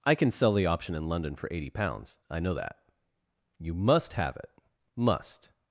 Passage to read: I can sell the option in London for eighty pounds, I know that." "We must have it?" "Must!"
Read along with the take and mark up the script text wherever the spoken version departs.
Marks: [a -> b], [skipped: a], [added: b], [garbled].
I can sell the option in London for eighty pounds, I know that." ["We -> You] must have it?" "Must!"